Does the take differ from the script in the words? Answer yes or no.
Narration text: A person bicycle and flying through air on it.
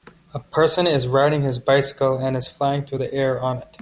yes